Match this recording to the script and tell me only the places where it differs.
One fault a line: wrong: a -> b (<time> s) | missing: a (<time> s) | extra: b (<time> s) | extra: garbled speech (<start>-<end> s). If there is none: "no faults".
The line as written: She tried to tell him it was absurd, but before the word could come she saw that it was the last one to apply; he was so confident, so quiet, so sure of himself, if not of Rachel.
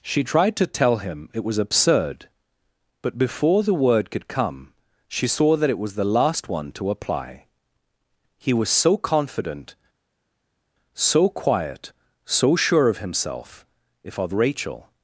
missing: not (14.2 s)